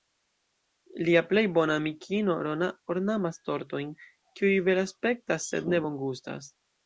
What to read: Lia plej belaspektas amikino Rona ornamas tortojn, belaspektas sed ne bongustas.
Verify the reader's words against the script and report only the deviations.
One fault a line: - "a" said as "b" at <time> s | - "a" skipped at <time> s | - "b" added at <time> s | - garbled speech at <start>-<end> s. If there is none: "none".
- "belaspektas" said as "bona" at 1.6 s
- "kiuj" added at 4.4 s